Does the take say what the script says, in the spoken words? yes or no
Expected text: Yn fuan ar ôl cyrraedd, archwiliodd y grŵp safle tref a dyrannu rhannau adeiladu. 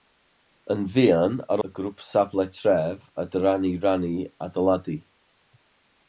no